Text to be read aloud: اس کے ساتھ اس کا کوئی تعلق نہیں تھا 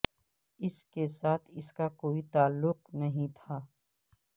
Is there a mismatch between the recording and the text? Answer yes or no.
no